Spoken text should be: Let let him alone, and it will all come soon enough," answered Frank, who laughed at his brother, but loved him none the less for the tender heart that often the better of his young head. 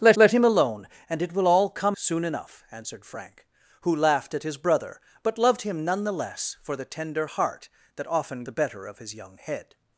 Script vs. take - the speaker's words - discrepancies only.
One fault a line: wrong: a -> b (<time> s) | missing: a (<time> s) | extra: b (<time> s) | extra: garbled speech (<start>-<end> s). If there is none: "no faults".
no faults